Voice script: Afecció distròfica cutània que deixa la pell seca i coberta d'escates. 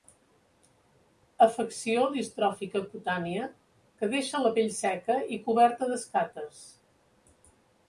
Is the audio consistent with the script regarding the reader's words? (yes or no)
yes